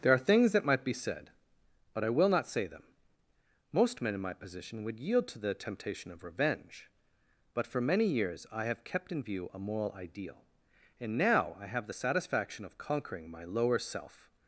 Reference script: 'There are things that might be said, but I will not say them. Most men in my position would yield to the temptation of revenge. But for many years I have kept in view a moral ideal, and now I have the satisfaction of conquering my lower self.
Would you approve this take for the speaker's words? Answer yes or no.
yes